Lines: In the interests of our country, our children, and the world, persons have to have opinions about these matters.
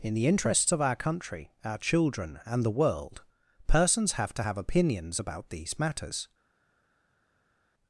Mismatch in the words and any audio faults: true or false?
false